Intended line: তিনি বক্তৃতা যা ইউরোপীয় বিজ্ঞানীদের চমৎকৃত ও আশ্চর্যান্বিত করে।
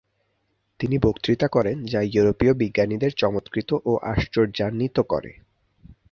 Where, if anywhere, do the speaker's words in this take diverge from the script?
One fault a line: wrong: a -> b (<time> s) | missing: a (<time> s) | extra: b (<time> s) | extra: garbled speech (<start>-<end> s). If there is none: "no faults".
extra: করেন (1.5 s)